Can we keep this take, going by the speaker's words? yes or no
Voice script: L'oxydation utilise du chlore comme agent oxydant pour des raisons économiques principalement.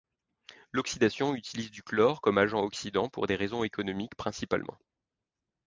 yes